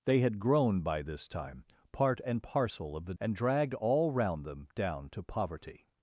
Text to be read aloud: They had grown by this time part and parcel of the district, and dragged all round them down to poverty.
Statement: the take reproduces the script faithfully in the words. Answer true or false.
false